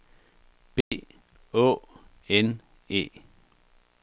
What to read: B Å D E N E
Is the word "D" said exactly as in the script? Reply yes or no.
no